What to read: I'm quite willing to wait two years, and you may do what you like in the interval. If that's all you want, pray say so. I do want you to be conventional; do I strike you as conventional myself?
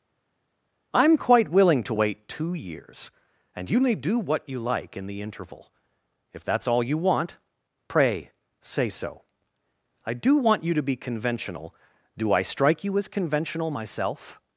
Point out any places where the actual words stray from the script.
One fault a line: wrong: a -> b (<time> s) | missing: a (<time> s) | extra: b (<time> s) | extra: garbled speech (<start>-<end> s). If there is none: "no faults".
no faults